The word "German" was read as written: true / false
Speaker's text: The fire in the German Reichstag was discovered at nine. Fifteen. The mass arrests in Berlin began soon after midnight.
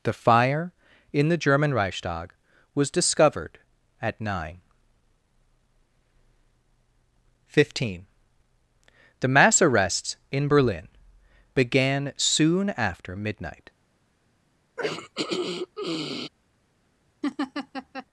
true